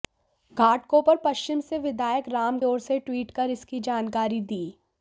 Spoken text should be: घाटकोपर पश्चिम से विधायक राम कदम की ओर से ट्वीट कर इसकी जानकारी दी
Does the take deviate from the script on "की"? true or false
true